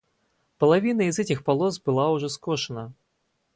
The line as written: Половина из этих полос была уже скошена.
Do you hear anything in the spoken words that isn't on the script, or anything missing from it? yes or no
no